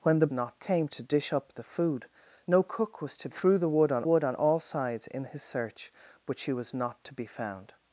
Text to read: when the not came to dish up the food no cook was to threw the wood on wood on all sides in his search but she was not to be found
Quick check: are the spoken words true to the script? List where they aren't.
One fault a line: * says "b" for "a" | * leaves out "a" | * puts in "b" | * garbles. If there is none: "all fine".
all fine